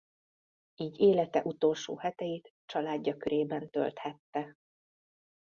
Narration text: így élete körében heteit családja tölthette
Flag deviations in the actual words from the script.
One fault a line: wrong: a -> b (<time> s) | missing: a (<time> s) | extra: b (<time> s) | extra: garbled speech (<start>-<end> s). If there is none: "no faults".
wrong: körében -> utolsó (1.4 s)
extra: körében (3.2 s)